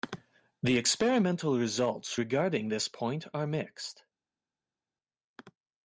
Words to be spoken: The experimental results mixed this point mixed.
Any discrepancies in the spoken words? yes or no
yes